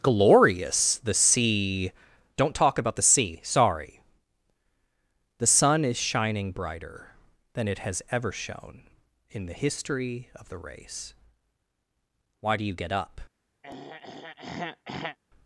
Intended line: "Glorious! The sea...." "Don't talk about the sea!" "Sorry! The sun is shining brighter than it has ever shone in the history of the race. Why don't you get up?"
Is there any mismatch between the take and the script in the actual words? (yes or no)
yes